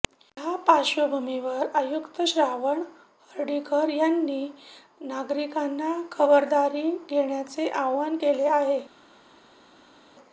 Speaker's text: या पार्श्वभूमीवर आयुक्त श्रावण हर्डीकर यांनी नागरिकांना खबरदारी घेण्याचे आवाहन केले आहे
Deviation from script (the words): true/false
false